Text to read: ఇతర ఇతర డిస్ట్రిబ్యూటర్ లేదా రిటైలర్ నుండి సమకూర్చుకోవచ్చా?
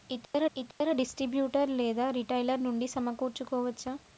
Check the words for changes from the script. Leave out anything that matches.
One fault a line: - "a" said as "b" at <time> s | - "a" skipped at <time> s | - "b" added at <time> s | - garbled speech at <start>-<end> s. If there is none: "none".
none